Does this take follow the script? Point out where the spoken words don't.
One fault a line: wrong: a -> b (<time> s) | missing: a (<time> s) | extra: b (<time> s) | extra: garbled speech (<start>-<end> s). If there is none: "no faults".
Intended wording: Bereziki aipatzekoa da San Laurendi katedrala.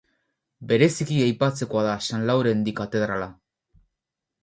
no faults